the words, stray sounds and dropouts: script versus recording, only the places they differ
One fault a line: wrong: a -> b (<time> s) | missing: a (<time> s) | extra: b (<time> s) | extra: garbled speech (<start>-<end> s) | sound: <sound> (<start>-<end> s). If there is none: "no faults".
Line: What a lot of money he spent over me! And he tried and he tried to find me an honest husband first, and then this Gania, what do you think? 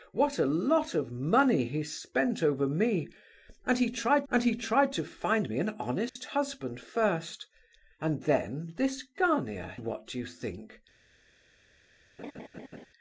sound: dropout (6.1-6.2 s)
sound: laugh (12.2-12.9 s)